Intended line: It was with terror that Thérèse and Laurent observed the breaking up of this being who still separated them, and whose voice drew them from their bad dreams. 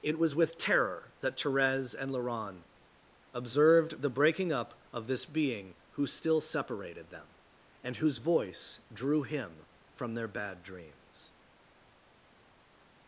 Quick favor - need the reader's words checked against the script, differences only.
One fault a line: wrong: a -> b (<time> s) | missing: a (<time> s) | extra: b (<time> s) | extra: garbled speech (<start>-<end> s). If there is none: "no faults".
wrong: them -> him (9.2 s)